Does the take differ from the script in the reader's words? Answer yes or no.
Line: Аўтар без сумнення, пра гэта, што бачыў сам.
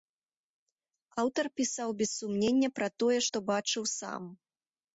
yes